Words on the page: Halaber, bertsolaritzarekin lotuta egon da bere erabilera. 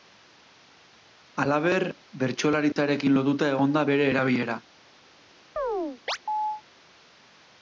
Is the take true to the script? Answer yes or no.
yes